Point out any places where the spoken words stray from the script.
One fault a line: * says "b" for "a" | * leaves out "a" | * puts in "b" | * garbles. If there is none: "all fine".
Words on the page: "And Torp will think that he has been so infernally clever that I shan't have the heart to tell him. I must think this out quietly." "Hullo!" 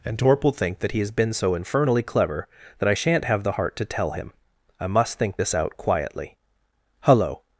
all fine